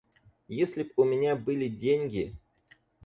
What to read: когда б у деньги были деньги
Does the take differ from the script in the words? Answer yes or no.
yes